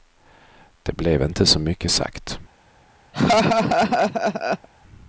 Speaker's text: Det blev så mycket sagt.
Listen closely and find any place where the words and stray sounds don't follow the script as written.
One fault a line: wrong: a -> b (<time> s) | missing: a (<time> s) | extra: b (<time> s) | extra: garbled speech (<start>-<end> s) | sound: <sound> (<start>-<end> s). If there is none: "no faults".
extra: inte (1.2 s)
sound: laugh (3.1-4.7 s)